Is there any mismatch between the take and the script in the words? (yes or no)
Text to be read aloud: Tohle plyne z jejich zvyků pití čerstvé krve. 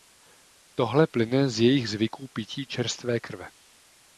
no